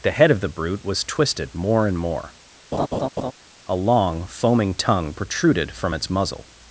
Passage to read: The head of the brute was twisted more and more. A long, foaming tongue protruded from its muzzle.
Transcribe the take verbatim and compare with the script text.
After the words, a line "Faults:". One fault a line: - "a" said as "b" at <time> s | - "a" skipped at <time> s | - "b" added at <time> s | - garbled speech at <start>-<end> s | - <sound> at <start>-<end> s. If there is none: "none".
The head of the brute was twisted more and more. A long, foaming tongue protruded from its muzzle.
Faults:
- laugh at 2.7-3.3 s